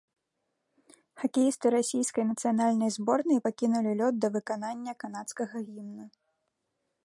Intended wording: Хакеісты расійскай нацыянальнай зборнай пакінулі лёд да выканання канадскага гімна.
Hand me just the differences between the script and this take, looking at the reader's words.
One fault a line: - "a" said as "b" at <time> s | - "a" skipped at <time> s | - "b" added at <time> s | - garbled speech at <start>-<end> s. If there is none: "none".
none